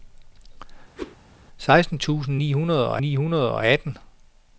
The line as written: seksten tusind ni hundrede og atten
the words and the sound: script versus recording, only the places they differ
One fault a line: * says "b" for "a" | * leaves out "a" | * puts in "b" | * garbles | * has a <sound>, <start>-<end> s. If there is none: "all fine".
* has a whoosh, 1.0-1.2 s
* puts in "ni hundrede og"